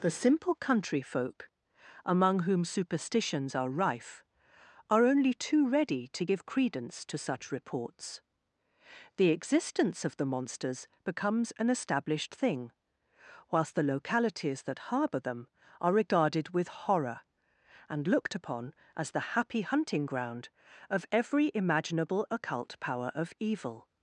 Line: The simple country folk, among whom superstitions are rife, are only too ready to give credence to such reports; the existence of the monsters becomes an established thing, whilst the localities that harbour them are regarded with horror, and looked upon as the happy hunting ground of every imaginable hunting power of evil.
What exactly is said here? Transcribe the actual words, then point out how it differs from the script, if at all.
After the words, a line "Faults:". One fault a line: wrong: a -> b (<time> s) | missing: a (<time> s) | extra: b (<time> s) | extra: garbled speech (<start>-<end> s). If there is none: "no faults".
The simple country folk, among whom superstitions are rife, are only too ready to give credence to such reports; the existence of the monsters becomes an established thing, whilst the localities that harbour them are regarded with horror, and looked upon as the happy hunting ground of every imaginable occult power of evil.
Faults:
wrong: hunting -> occult (22.3 s)